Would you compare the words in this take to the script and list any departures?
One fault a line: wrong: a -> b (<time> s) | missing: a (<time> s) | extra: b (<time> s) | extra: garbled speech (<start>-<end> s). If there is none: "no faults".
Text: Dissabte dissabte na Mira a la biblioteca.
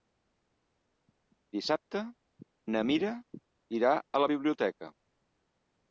missing: dissabte (2.0 s)
extra: irà (3.8 s)